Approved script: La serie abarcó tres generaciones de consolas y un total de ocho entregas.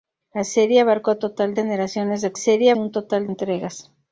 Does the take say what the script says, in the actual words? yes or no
no